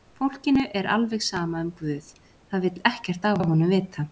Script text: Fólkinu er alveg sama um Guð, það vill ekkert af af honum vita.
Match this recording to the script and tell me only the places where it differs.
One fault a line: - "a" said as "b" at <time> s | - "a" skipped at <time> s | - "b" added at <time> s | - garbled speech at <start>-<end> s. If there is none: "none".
none